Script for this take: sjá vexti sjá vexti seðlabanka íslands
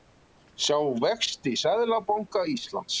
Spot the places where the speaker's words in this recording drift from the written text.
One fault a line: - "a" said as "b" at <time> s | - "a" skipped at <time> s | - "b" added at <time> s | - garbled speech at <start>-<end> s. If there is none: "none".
- "sjá vexti" skipped at 1.5 s